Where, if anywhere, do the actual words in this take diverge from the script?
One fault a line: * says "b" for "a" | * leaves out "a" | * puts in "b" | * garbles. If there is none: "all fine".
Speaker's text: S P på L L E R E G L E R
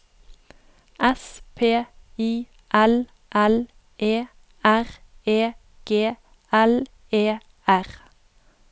* says "I" for "på"